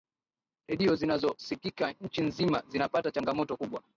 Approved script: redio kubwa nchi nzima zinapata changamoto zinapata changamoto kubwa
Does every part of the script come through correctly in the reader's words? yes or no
no